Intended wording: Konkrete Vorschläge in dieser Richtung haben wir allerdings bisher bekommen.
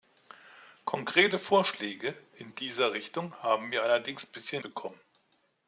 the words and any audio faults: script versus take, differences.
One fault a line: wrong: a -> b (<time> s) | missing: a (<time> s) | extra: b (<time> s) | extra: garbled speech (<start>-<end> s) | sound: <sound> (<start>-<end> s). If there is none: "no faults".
no faults